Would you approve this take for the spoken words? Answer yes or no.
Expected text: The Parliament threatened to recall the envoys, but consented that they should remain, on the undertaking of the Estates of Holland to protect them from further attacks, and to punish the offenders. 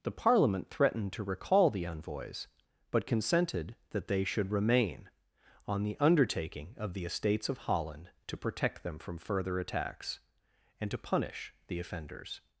yes